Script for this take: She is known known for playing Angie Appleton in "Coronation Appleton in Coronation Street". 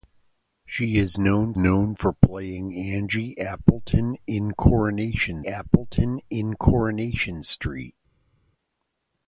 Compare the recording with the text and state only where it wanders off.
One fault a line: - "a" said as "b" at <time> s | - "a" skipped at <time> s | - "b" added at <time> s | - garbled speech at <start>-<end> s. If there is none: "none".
none